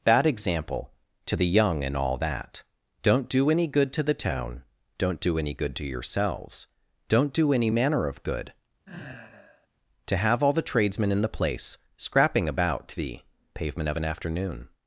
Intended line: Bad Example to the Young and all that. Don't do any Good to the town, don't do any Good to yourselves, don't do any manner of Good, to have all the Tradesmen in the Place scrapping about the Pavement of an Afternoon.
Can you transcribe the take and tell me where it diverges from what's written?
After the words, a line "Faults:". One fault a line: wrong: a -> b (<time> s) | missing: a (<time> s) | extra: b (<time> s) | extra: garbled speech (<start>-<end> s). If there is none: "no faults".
Bad Example to the Young and all that. Don't do any Good to the town, don't do any Good to yourselves, don't do any manner of Good, to have all the Tradesmen in the Place scrapping about the Pavement of an Afternoon.
Faults:
no faults